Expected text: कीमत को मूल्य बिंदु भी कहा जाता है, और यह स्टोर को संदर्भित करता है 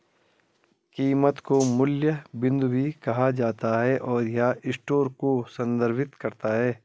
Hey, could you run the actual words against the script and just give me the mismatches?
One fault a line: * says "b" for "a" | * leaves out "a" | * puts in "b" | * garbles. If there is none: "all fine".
all fine